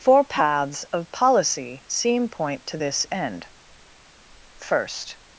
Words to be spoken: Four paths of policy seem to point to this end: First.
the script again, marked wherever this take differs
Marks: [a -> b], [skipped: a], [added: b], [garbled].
Four paths of policy seem [skipped: to] point to this end: First.